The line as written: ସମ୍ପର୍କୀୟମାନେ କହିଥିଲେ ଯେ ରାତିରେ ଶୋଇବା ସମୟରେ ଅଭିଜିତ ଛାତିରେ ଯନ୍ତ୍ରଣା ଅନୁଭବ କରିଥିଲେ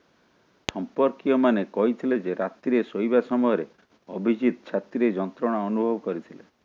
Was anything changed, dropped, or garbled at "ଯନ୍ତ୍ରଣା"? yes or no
no